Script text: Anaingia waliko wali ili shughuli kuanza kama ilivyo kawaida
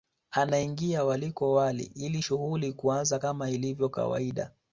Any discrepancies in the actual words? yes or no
no